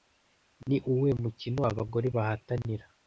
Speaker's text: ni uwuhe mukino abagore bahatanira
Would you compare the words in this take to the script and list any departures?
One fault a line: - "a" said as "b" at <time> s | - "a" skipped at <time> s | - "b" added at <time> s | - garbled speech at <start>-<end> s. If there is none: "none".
none